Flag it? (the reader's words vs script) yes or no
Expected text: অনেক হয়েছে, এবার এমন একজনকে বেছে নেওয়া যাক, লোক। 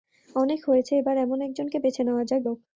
no